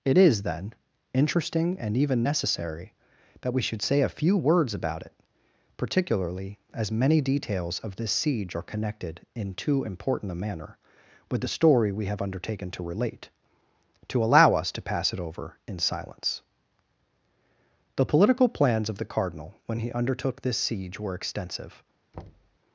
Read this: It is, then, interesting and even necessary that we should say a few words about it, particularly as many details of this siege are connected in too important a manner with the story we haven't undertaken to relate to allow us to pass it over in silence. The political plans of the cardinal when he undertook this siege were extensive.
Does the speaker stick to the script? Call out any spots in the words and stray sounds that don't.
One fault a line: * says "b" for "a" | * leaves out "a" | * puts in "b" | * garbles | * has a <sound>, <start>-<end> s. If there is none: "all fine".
* says "have" for "haven't"
* has a thud, 22.1-22.6 s